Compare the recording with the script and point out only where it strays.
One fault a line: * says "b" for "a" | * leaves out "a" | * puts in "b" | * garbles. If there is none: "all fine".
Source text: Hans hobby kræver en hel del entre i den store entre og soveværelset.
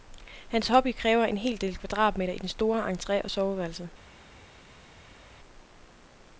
* says "kvadratmeter" for "entre"